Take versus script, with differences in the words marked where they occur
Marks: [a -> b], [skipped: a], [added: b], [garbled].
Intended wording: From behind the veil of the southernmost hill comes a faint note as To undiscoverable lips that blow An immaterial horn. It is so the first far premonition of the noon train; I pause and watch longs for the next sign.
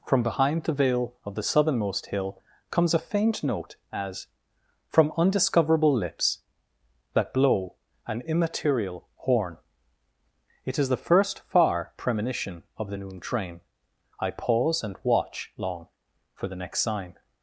From behind the veil of the southernmost hill comes a faint note as [To -> From] undiscoverable lips that blow An immaterial horn. It is [skipped: so] the first far premonition of the noon train; I pause and watch [longs -> long] for the next sign.